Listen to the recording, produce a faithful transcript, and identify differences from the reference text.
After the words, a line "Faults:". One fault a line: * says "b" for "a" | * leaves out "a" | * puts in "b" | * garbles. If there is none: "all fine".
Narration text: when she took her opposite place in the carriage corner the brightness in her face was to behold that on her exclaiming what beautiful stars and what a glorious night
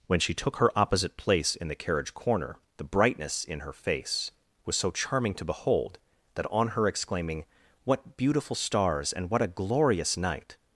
when she took her opposite place in the carriage corner the brightness in her face was so charming to behold that on her exclaiming what beautiful stars and what a glorious night
Faults:
* puts in "so charming"